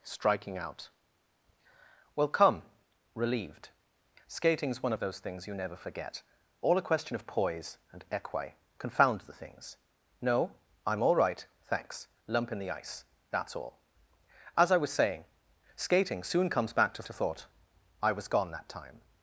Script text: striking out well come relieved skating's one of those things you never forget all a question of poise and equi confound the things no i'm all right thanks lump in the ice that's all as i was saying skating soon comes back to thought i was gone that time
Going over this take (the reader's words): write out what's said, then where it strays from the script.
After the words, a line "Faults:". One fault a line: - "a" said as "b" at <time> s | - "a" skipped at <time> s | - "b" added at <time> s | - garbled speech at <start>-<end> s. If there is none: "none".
striking out well come relieved skating's one of those things you never forget all a question of poise and equi confound the things no i'm all right thanks lump in the ice that's all as i was saying skating soon comes back to to thought i was gone that time
Faults:
- "to" added at 17.0 s